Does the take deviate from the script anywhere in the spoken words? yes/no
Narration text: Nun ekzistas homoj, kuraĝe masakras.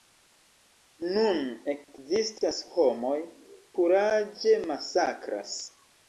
no